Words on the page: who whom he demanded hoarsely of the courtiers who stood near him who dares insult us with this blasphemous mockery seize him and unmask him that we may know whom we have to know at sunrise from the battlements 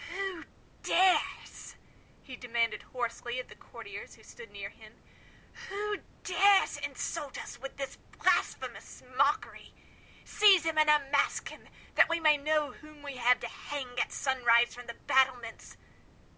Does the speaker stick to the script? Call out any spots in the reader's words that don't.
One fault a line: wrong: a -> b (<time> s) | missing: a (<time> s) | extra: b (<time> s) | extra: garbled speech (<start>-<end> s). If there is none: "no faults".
wrong: whom -> dares (0.8 s)
wrong: know -> hang (13.5 s)